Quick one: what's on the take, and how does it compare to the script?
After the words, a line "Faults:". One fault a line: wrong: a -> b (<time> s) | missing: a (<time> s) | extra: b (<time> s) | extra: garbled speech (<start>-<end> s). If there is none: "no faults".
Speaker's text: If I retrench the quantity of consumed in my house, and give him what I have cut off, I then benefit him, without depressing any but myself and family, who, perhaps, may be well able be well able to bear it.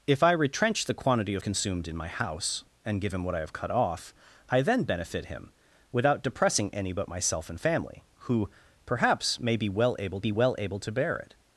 If I retrench the quantity of consumed in my house, and give him what I have cut off, I then benefit him, without depressing any but myself and family, who, perhaps, may be well able be well able to bear it.
Faults:
no faults